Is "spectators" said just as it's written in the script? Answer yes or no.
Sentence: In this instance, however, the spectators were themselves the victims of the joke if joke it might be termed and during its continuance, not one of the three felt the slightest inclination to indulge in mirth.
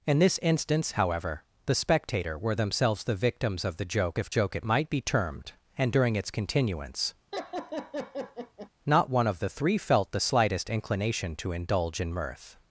no